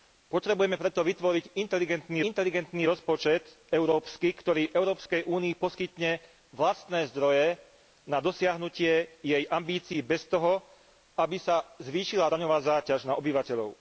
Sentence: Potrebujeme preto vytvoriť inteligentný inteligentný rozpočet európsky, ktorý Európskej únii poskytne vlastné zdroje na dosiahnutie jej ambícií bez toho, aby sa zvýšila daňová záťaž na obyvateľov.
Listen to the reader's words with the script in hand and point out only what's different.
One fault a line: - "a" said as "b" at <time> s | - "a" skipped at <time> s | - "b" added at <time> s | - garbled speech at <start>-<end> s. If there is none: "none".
none